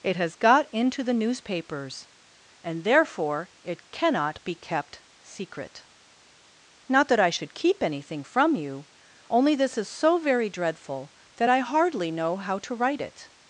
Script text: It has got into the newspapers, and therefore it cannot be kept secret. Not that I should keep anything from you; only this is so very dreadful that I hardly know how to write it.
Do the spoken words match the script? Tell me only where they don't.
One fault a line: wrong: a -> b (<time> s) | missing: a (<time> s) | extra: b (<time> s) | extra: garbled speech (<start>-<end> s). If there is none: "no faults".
no faults